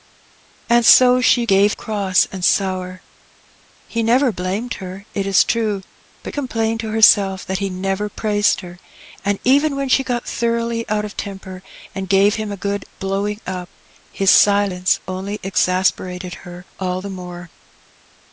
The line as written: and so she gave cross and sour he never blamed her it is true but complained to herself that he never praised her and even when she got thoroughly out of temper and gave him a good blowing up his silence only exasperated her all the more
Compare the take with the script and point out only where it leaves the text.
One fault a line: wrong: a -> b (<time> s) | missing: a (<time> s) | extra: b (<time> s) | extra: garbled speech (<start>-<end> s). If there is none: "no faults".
no faults